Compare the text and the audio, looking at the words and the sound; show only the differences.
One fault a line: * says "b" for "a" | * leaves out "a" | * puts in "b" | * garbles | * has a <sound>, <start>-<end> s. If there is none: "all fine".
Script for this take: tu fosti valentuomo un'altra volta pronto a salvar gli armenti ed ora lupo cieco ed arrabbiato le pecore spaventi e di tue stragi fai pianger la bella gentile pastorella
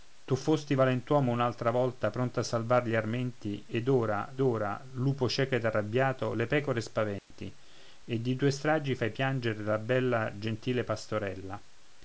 * puts in "ora"
* has a dropout, 7.2-7.3 s